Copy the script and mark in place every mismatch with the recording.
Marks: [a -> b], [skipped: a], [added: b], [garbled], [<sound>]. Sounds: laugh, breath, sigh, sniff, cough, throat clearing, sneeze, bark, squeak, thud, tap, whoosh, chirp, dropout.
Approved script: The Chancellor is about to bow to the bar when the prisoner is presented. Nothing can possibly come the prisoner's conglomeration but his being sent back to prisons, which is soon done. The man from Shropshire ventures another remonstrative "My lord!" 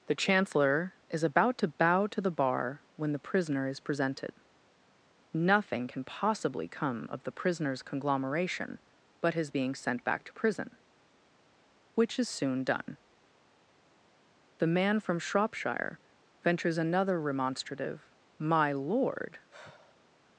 The Chancellor is about to bow to the bar when the prisoner is presented. Nothing can possibly come [added: of] the prisoner's conglomeration but his being sent back to [prisons, -> prison] which is soon done. The man from Shropshire ventures another remonstrative "My lord!" [sigh]